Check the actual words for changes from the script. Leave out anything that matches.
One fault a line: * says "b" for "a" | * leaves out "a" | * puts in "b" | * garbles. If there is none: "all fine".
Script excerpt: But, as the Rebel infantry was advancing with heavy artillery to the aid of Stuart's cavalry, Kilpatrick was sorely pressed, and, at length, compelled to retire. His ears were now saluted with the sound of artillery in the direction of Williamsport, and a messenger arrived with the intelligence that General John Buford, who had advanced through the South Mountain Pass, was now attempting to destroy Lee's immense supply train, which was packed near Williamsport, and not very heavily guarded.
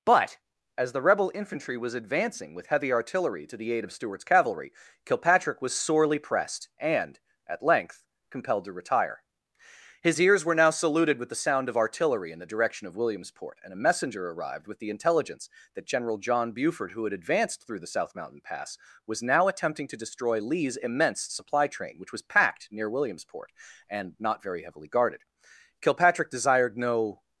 * puts in "Kilpatrick desired no"